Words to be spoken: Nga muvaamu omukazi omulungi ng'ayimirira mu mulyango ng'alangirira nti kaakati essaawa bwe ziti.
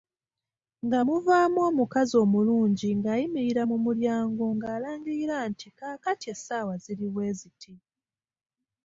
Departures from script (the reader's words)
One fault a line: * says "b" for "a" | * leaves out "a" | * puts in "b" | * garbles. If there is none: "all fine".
* puts in "ziri"